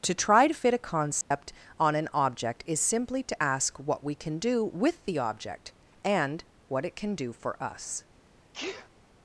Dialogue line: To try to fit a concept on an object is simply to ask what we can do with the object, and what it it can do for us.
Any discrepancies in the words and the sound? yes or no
yes